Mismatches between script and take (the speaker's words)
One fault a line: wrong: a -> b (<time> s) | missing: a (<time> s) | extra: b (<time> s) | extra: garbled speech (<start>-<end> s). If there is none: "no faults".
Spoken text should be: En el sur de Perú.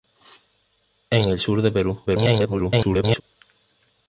extra: garbled speech (2.1-3.2 s)